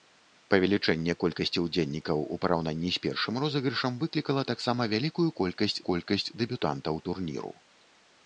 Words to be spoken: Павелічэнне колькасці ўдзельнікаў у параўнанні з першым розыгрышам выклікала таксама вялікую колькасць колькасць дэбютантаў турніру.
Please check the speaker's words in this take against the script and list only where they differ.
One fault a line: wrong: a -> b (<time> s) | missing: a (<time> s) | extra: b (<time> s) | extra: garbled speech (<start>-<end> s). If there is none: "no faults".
no faults